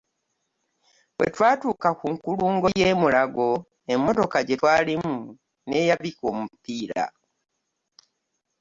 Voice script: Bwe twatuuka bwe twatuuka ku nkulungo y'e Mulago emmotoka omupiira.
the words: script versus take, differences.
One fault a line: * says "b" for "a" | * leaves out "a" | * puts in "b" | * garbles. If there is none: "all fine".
* leaves out "bwe twatuuka"
* puts in "gye twalimu n'eyabika"